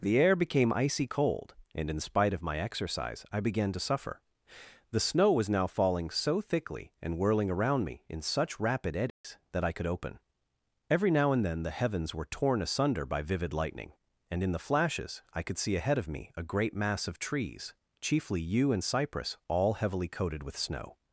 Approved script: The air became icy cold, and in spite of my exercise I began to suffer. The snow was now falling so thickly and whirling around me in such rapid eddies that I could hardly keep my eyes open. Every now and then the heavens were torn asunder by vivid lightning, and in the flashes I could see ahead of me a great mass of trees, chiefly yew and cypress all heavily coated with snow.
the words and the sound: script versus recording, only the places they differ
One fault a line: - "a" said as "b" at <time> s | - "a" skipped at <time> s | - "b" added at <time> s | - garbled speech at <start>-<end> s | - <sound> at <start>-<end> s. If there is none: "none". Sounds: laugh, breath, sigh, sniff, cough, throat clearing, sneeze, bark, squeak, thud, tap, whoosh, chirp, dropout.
- dropout at 9.1-9.2 s
- "hardly keep my eyes" skipped at 9.8 s